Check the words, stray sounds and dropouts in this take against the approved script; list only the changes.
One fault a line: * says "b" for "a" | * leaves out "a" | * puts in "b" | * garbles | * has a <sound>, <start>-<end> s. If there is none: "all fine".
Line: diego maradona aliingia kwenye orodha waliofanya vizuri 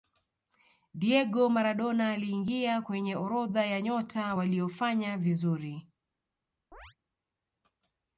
* puts in "ya nyota"
* has a chirp, 6.7-7.0 s